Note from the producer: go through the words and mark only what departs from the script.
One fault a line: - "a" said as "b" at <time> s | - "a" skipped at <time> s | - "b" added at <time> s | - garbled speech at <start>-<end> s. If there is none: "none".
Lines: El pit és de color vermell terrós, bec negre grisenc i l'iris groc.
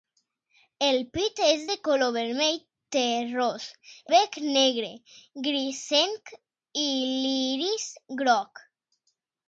none